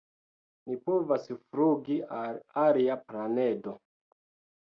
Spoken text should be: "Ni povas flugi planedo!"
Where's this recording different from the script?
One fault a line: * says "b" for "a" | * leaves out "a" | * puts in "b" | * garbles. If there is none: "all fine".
* puts in "al alia"